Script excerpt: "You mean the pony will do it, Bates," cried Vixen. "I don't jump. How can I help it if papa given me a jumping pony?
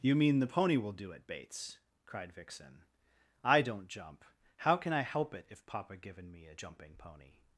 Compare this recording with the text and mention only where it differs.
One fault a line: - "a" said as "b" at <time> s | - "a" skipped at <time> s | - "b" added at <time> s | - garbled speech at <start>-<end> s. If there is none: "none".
none